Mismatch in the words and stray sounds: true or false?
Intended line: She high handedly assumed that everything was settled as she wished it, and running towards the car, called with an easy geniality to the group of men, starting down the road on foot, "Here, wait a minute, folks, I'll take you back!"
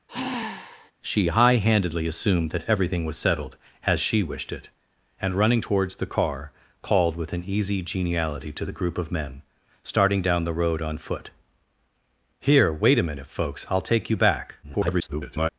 true